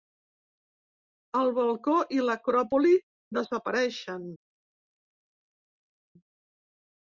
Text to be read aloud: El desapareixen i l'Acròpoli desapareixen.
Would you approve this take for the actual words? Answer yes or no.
no